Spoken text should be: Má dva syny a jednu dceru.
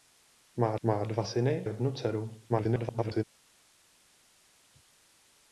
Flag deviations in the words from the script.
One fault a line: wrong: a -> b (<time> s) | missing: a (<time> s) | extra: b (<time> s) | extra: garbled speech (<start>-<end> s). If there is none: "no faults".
extra: má (0.8 s)
missing: a (1.7 s)
extra: garbled speech (2.5-3.2 s)